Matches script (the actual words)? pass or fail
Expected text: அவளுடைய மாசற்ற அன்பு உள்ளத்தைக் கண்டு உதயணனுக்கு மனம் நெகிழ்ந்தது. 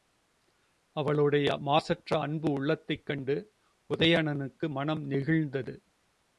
pass